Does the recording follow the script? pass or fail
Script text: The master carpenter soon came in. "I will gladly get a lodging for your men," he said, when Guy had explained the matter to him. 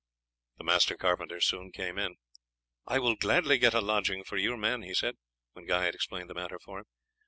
pass